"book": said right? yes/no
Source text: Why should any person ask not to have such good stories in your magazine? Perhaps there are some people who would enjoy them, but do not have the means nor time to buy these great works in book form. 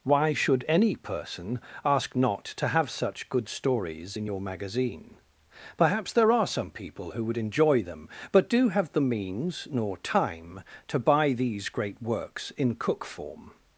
no